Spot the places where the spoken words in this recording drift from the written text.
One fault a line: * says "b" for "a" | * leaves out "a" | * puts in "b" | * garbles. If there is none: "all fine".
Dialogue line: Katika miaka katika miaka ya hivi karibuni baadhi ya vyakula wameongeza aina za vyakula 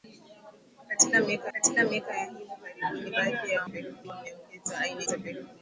all fine